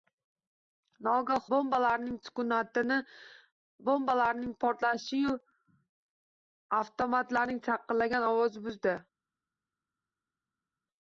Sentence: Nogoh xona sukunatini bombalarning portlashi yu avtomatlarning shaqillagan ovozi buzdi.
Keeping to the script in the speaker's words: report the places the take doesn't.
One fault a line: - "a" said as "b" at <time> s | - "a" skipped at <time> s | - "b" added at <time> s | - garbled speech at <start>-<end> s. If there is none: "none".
- "xona" said as "bombalarning" at 1.6 s